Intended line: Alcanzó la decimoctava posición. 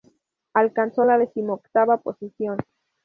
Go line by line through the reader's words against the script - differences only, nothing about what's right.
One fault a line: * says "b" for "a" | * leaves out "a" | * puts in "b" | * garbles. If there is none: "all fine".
all fine